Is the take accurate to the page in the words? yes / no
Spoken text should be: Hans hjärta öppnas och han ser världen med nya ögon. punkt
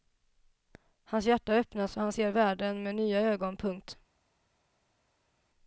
yes